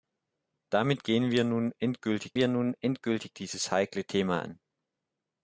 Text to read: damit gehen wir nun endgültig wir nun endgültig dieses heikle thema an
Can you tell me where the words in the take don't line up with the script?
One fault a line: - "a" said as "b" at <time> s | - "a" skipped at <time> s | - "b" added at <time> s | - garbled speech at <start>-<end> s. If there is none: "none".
none